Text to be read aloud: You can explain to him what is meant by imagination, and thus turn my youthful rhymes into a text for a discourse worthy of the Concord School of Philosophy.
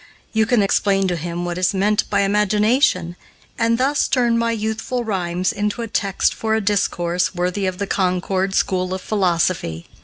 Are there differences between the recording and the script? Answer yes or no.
no